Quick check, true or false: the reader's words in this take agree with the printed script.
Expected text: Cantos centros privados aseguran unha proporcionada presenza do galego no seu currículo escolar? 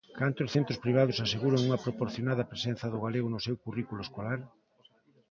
true